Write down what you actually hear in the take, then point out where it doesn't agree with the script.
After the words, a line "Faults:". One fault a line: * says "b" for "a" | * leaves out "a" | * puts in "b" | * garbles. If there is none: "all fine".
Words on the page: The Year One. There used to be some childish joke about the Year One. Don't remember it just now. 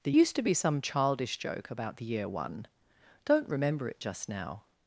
The Used to be some childish joke about the Year One. Don't remember it just now.
Faults:
* leaves out "Year One There"